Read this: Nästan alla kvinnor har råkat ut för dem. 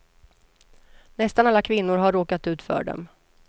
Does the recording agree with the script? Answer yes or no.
yes